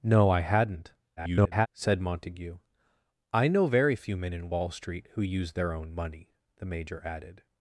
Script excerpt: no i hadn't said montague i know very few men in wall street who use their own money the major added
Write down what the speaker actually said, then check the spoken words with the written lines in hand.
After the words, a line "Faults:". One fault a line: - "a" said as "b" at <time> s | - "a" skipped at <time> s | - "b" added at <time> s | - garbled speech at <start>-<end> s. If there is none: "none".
no i hadn't [garbled] said montague i know very few men in wall street who use their own money the major added
Faults:
- garbled speech at 1.2-1.7 s